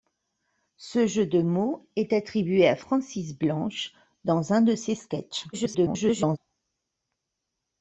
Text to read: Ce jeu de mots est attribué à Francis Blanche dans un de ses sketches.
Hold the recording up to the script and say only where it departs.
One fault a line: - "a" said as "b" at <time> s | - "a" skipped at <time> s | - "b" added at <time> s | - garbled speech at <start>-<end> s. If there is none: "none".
- garbled speech at 5.5-6.4 s